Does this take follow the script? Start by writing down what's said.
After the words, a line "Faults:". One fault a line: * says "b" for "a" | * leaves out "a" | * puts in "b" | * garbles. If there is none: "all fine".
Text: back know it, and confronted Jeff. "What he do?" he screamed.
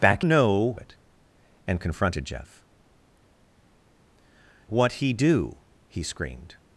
back know it, and confronted Jeff. "What he do?" he screamed.
Faults:
all fine